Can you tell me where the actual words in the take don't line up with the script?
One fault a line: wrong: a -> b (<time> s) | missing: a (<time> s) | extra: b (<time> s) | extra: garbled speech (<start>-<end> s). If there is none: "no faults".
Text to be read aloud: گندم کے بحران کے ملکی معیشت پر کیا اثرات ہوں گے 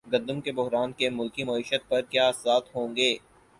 no faults